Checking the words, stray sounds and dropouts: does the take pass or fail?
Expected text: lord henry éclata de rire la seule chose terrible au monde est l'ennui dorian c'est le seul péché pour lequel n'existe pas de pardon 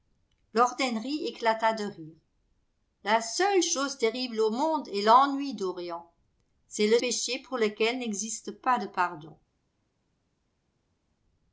fail